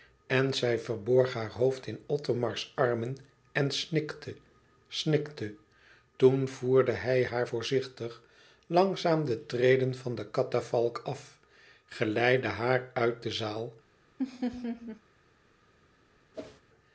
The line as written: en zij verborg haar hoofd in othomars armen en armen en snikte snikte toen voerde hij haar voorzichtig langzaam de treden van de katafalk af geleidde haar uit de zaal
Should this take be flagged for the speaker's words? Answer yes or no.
yes